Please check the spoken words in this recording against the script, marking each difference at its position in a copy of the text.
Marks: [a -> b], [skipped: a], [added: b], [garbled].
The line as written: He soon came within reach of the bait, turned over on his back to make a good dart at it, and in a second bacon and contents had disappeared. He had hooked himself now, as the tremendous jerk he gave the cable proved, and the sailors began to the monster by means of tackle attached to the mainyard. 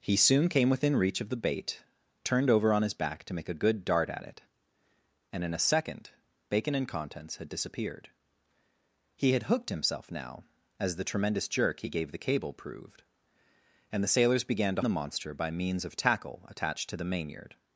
He soon came within reach of the bait, turned over on his back to make a good dart at it, and in a second bacon and contents had disappeared. He had hooked himself now, as the tremendous jerk he gave the cable proved, and the sailors began to the monster by means of tackle attached to the mainyard.